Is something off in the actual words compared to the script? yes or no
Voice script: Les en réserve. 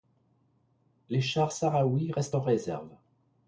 yes